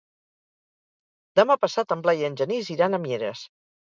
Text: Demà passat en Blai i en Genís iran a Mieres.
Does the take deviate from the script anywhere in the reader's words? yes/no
no